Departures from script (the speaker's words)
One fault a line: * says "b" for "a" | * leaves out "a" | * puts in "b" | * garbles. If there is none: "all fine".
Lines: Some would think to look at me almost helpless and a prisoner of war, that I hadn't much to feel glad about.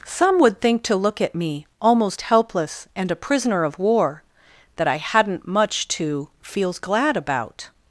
* says "feels" for "feel"